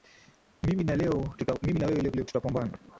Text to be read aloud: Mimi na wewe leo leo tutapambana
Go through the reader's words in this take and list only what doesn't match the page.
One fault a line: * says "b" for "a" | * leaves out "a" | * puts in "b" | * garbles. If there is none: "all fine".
all fine